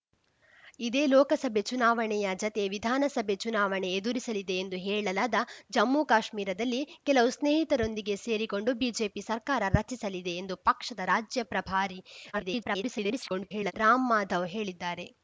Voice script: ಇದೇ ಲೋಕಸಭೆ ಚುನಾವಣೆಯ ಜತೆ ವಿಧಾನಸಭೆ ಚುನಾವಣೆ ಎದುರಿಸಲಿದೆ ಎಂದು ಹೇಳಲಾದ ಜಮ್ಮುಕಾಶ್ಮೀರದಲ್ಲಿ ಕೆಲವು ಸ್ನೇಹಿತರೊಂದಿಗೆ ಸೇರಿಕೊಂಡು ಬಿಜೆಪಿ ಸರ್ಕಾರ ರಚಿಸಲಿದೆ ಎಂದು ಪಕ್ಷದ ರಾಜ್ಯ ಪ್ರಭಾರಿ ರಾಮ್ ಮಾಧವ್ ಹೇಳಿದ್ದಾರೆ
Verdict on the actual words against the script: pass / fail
fail